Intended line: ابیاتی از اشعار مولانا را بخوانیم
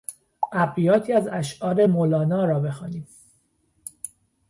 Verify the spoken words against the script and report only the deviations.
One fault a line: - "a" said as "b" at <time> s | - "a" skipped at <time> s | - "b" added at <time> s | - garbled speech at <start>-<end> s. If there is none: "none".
none